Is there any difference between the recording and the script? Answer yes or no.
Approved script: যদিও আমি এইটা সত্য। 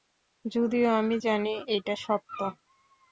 yes